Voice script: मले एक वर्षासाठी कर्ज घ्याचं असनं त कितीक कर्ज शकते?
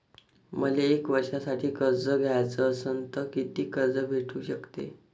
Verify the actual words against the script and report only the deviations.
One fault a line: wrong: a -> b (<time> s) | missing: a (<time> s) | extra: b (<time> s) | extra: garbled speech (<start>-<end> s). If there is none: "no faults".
extra: भेटू (4.1 s)